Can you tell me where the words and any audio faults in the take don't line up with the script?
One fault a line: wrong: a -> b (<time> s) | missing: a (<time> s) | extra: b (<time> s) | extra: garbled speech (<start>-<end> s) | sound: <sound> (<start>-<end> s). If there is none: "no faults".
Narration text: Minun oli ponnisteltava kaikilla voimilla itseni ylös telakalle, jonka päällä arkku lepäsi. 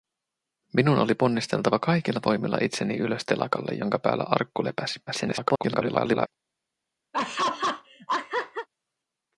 extra: garbled speech (5.1-6.3 s)
sound: laugh (7.1-8.7 s)